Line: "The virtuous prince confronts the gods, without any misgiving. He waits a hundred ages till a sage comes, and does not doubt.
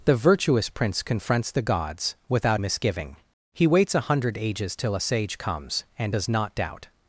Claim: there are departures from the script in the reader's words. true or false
true